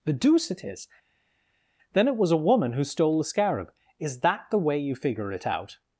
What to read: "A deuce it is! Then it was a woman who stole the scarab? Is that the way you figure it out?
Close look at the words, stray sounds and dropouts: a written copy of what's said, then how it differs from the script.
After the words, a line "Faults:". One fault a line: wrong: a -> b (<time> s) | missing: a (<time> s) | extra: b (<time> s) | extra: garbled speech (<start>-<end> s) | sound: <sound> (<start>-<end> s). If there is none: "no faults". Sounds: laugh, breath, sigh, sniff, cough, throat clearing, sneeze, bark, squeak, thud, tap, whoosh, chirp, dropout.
"The deuce it is! Then it was a woman who stole the scarab? Is that the way you figure it out?
Faults:
wrong: A -> The (0.0 s)